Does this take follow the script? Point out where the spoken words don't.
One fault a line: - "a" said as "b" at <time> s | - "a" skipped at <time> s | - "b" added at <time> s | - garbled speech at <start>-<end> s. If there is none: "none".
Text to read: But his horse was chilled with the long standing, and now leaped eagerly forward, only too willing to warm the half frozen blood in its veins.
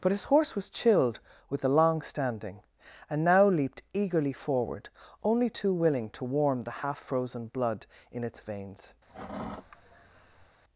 none